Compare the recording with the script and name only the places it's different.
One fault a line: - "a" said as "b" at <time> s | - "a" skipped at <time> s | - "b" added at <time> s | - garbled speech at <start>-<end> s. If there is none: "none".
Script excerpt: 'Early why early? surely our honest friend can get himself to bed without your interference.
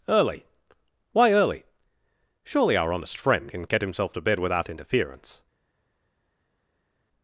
- "your" skipped at 4.7 s